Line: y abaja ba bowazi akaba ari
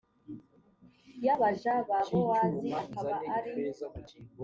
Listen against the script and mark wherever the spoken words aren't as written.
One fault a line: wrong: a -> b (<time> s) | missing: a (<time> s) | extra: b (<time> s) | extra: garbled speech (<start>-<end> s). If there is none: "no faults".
no faults